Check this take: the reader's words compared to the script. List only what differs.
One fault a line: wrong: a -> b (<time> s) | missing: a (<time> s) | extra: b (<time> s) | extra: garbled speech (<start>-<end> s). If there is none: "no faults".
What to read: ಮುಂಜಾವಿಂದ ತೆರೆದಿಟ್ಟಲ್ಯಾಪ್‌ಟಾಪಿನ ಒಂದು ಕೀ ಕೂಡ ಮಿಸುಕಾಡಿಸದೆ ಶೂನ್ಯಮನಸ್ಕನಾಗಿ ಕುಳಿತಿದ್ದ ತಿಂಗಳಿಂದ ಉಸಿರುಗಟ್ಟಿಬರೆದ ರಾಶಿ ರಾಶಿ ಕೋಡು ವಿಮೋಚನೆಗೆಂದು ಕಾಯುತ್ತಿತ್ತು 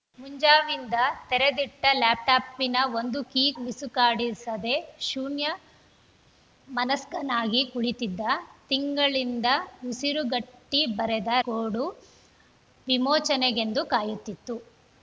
missing: ಕೂಡ (3.4 s)
missing: ರಾಶಿ ರಾಶಿ (11.3 s)